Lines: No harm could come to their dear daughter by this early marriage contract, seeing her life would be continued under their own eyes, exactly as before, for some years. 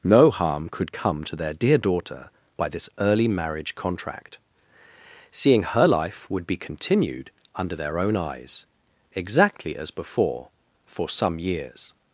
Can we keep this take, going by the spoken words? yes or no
yes